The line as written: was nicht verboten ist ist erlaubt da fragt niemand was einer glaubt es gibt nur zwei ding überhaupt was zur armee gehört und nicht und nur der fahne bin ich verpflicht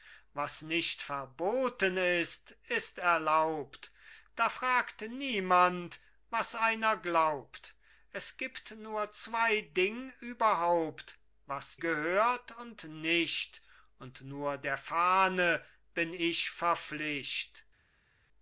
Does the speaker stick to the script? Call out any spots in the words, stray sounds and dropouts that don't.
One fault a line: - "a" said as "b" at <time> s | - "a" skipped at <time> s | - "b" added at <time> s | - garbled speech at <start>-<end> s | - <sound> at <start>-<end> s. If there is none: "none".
- "zur armee" skipped at 11.8 s